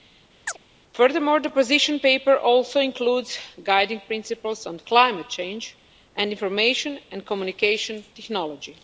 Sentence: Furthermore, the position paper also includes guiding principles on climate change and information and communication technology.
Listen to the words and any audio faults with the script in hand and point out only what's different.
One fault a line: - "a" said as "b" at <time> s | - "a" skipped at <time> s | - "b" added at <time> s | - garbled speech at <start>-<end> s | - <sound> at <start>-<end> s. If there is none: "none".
- chirp at 0.5-0.6 s